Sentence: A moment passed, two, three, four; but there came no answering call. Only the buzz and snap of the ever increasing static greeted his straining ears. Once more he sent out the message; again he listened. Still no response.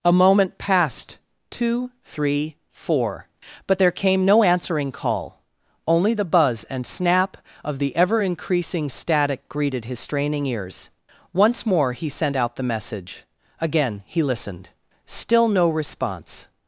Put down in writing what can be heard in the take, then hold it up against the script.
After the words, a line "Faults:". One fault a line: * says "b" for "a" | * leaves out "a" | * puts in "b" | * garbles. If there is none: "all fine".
A moment passed, two, three, four; but there came no answering call. Only the buzz and snap of the ever increasing static greeted his straining ears. Once more he sent out the message; again he listened. Still no response.
Faults:
all fine